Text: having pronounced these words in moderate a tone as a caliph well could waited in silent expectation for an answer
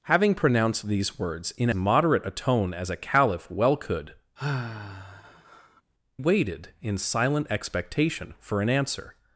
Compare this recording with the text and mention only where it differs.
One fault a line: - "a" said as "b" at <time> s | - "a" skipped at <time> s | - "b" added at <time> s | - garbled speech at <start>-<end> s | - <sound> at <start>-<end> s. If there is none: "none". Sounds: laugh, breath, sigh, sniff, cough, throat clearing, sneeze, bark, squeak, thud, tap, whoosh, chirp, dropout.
- sigh at 4.4-5.8 s